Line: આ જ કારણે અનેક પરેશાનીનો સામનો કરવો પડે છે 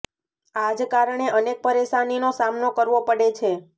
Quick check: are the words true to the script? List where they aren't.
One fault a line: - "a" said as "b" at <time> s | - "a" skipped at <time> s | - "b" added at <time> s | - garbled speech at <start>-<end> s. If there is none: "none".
none